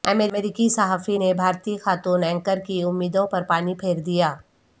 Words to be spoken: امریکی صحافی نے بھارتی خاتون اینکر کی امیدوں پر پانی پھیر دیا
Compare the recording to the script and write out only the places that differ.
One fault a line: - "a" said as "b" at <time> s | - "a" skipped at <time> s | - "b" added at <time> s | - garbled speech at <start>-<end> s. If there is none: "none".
none